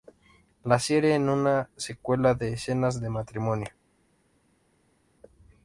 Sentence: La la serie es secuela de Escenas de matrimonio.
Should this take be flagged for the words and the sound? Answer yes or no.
yes